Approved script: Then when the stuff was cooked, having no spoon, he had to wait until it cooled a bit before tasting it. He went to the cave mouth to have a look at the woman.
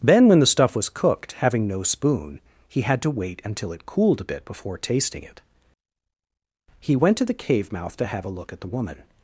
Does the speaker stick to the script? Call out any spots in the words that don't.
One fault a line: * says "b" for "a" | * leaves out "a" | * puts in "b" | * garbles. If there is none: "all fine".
all fine